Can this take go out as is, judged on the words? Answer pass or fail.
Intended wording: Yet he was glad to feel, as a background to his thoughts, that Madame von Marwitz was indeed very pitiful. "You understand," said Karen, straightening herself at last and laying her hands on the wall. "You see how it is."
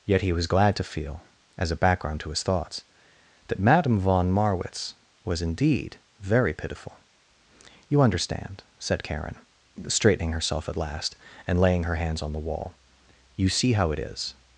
pass